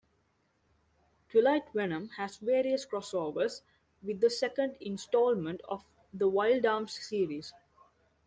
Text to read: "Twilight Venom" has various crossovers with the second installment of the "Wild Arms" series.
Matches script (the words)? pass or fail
pass